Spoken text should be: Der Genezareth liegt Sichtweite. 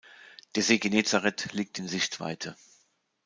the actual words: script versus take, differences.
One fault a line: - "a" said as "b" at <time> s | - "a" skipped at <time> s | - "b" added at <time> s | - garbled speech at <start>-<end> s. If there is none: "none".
- "See" added at 0.6 s
- "in" added at 1.7 s